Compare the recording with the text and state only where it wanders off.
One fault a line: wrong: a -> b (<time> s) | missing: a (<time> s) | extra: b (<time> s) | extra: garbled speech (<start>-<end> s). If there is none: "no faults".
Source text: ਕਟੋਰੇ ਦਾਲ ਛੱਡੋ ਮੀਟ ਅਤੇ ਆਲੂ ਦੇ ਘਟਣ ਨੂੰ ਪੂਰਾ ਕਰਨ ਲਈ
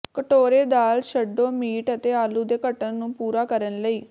no faults